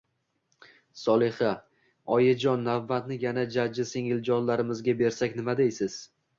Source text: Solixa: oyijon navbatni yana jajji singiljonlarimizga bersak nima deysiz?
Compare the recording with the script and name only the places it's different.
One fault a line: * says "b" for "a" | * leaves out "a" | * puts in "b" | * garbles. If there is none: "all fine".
all fine